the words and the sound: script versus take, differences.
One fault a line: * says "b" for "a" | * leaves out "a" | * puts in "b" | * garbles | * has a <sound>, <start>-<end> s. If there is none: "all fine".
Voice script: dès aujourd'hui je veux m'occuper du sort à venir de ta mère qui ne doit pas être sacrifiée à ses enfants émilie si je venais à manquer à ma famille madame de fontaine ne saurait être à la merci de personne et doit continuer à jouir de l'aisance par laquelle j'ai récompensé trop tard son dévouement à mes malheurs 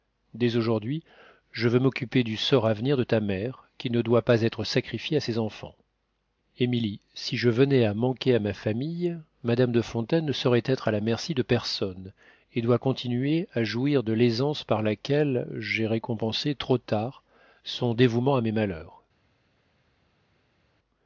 all fine